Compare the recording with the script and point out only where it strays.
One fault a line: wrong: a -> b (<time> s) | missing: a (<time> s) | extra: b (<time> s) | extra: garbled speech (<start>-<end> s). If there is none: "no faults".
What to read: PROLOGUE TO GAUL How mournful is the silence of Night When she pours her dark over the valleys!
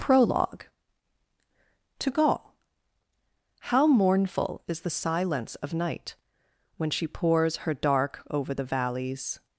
no faults